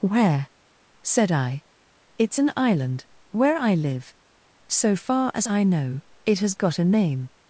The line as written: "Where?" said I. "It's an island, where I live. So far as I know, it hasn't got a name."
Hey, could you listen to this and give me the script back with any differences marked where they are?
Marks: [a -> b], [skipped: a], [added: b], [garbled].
"Where?" said I. "It's an island, where I live. So far as I know, it [hasn't -> has] got a name."